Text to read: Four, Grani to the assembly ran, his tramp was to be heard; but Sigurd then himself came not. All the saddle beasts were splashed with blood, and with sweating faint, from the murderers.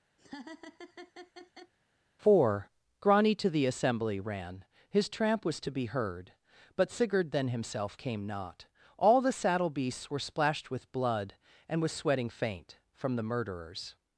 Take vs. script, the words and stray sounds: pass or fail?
fail